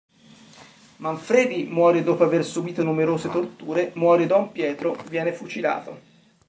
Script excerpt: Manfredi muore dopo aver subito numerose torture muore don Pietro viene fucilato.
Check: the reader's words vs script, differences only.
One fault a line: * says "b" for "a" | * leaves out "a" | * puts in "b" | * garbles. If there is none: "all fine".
all fine